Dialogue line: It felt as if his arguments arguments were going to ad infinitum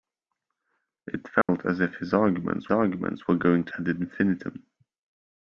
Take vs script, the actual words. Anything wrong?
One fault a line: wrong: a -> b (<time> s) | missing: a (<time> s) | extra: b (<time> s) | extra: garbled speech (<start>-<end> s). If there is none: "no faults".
no faults